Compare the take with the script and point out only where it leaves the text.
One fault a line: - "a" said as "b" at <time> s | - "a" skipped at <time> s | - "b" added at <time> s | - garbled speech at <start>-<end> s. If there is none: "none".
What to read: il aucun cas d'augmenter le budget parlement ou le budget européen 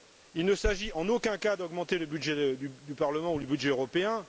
- "ne s'agit en" added at 0.5 s
- "du" added at 2.6 s